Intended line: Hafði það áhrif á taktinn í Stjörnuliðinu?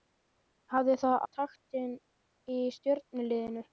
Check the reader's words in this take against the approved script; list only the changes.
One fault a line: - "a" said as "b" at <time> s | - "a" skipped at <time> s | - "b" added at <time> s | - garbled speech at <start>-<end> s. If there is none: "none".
- "áhrif" skipped at 1.2 s